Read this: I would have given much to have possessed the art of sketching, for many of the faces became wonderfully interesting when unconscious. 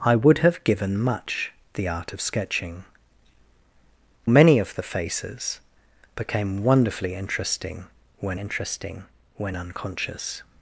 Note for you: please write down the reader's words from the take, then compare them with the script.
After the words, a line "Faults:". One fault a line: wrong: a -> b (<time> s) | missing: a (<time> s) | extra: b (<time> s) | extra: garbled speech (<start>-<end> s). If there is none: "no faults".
I would have given much the art of sketching, many of the faces became wonderfully interesting when interesting when unconscious.
Faults:
missing: to have possessed (1.5 s)
missing: for (2.8 s)
extra: interesting when (8.4 s)